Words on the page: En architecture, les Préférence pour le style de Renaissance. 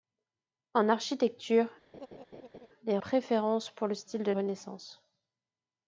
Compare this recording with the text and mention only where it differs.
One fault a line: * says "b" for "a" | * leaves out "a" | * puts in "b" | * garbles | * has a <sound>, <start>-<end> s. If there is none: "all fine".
* has a laugh, 1.9-2.7 s